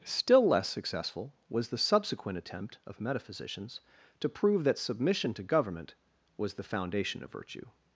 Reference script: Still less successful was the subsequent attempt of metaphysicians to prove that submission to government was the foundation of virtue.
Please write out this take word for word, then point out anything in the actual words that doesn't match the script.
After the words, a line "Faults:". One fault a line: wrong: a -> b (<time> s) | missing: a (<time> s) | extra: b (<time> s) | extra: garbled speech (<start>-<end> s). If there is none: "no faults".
Still less successful was the subsequent attempt of metaphysicians to prove that submission to government was the foundation of virtue.
Faults:
no faults